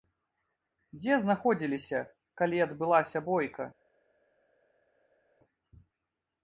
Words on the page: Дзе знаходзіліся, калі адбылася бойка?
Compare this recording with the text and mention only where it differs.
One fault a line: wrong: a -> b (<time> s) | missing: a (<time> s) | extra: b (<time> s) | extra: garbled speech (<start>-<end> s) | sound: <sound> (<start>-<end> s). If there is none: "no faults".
no faults